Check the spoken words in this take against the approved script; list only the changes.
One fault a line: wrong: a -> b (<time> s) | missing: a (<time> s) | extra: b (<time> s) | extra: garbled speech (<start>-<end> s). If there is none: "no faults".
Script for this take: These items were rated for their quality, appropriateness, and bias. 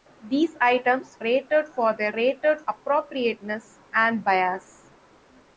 missing: were (1.2 s)
wrong: quality -> rated (2.2 s)